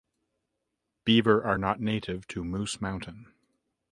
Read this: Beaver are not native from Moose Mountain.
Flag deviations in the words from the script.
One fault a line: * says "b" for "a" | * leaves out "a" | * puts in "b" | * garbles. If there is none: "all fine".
* says "to" for "from"